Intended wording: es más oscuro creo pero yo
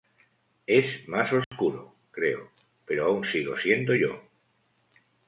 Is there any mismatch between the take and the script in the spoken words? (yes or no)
yes